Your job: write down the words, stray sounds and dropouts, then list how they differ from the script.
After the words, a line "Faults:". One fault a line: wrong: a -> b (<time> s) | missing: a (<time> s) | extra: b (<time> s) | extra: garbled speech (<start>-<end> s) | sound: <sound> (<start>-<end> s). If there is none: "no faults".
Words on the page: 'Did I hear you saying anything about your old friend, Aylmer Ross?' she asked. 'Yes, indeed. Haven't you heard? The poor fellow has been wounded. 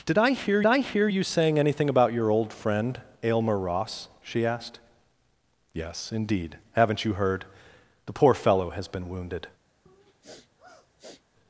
'Did I hear I hear you saying anything about your old friend, Aylmer Ross?' she asked. 'Yes, indeed. Haven't you heard? The poor fellow has been wounded.
Faults:
extra: I hear (0.6 s)
sound: sniff (9.9-11.2 s)